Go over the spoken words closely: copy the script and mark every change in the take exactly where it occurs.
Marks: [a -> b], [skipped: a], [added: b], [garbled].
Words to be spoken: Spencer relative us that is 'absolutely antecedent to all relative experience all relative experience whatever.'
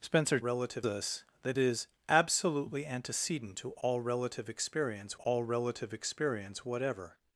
Spencer relative us that is 'absolutely antecedent to all relative experience all relative experience whatever.'